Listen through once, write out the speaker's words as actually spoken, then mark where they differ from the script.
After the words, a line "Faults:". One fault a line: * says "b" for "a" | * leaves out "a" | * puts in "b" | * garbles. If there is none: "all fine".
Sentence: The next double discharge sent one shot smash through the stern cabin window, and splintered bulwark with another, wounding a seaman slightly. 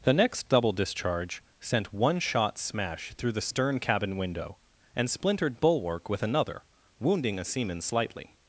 The next double discharge sent one shot smash through the stern cabin window, and splintered bulwark with another, wounding a seaman slightly.
Faults:
all fine